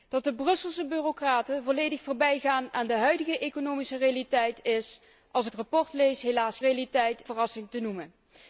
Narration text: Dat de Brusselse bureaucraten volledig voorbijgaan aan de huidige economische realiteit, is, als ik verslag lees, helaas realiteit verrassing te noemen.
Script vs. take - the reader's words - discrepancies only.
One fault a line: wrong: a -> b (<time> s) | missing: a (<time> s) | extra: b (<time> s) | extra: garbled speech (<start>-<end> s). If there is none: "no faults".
no faults